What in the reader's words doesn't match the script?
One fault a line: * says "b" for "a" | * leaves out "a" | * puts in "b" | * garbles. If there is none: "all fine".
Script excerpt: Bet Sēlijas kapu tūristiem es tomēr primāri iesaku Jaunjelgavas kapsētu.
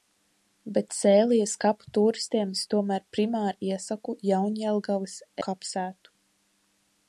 all fine